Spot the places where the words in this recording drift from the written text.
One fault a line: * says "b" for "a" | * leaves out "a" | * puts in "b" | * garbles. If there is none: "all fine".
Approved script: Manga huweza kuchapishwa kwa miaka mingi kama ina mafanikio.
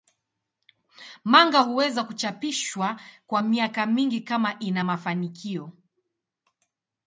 all fine